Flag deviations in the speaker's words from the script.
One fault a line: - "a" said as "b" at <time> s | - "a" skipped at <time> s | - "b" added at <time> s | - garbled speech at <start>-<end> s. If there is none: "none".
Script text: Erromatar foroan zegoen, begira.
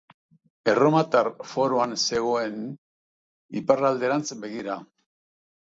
- "iparralderantz" added at 3.6 s